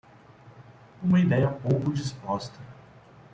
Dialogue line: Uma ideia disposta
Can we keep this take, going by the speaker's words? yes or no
no